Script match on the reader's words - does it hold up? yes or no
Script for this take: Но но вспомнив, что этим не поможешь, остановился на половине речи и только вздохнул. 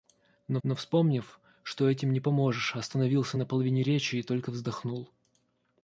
yes